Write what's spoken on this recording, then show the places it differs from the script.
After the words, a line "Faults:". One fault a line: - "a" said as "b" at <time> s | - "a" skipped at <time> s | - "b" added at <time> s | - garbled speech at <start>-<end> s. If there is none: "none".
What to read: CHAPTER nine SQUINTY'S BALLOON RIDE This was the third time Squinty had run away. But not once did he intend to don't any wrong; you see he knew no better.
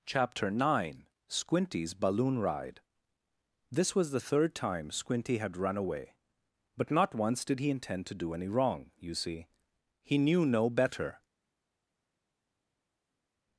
CHAPTER nine SQUINTY'S BALLOON RIDE This was the third time Squinty had run away. But not once did he intend to do any wrong; you see he knew no better.
Faults:
- "don't" said as "do" at 8.1 s